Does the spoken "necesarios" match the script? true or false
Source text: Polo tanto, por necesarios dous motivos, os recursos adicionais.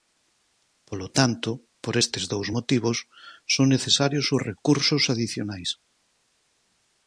false